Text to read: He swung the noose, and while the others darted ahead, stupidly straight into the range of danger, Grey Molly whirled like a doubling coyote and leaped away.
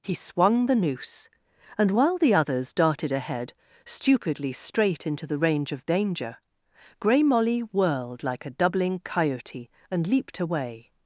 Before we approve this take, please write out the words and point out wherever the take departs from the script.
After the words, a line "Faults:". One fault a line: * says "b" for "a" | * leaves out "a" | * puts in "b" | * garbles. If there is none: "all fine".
He swung the noose, and while the others darted ahead, stupidly straight into the range of danger, Grey Molly whirled like a doubling coyote and leaped away.
Faults:
all fine